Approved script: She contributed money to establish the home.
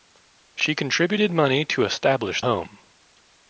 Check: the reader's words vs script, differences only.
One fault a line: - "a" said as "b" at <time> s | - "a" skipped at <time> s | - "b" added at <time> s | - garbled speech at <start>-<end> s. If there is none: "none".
- "the" skipped at 2.4 s